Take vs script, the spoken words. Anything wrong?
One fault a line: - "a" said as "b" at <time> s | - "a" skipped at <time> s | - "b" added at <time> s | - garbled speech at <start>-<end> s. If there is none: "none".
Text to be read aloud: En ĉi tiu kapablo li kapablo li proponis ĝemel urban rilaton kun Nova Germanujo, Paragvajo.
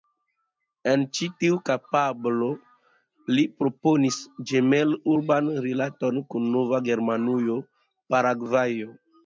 - "kapablo li" skipped at 3.5 s